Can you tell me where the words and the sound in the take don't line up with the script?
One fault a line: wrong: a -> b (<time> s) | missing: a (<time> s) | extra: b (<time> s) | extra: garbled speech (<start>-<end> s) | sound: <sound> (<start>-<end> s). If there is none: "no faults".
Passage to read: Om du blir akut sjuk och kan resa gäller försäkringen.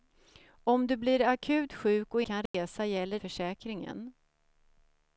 sound: dropout (2.5-2.5 s)